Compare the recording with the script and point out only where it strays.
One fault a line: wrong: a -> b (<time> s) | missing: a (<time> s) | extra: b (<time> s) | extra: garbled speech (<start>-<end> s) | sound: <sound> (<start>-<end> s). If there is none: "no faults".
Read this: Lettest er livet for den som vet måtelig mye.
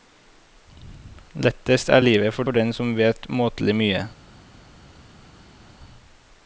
extra: for (2.4 s)